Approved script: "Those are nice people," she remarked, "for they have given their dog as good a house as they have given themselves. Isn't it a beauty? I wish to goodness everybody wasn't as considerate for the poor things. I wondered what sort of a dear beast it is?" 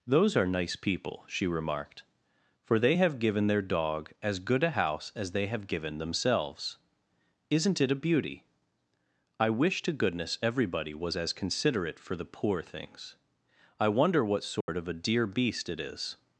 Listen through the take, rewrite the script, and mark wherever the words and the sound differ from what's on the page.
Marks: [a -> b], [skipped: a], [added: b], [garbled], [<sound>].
"Those are nice people," she remarked, "for they have given their dog as good a house as they have given themselves. Isn't it a beauty? I wish to goodness everybody [wasn't -> was] as considerate for the poor things. I [wondered -> wonder] what sort [dropout] of a dear beast it is?"